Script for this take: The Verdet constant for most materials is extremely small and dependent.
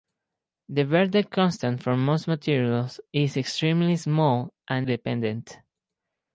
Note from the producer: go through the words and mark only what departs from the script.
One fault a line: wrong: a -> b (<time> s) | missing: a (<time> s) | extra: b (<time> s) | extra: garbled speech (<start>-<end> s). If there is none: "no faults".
no faults